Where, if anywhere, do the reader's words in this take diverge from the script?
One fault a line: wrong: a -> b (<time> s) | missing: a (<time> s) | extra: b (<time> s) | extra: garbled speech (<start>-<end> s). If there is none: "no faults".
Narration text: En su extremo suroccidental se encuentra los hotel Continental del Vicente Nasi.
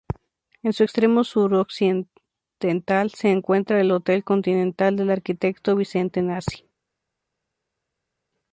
wrong: los -> el (3.8 s)
extra: arquitecto (5.1 s)